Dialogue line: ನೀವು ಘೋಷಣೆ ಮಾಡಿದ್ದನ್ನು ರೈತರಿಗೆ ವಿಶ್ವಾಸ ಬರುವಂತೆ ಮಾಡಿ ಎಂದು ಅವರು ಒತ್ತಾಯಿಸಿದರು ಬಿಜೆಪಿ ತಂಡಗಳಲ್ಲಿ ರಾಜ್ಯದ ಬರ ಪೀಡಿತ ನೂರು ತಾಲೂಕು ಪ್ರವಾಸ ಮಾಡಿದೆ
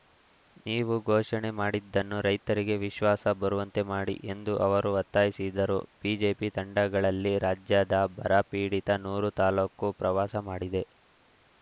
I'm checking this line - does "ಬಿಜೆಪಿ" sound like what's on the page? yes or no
yes